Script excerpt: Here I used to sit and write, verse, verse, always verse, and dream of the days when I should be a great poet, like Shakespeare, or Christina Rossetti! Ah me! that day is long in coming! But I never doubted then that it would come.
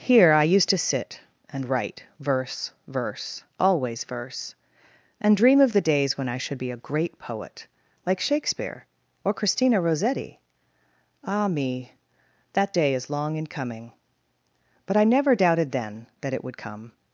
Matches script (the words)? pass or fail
pass